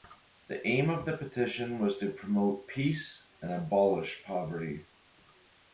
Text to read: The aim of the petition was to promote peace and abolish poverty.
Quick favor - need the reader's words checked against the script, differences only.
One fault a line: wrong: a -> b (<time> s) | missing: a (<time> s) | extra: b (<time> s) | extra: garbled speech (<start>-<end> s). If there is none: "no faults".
no faults